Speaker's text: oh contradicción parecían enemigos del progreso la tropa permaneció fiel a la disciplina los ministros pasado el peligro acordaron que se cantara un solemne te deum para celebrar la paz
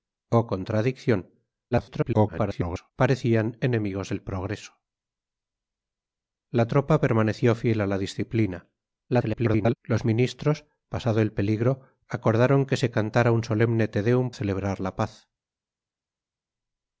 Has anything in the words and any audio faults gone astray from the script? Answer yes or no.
yes